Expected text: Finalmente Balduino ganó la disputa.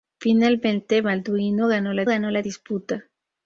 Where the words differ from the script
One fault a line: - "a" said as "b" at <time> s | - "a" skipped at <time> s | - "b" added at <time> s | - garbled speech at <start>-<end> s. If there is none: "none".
- "ganó la" added at 2.1 s